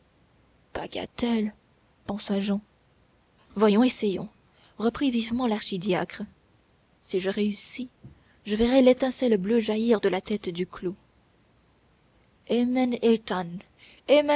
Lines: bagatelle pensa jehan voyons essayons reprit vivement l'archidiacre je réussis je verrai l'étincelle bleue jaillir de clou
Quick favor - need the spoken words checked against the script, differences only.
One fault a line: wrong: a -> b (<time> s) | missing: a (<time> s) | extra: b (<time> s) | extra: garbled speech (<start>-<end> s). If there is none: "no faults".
extra: si (7.0 s)
extra: la tête du (10.1 s)